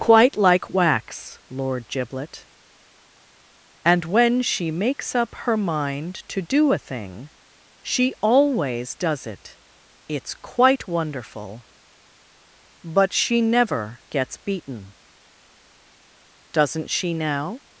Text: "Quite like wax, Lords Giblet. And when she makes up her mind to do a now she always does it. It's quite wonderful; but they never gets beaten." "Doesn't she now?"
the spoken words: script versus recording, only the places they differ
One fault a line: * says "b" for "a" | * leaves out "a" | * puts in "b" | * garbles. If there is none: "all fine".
* says "Lord" for "Lords"
* says "thing" for "now"
* says "she" for "they"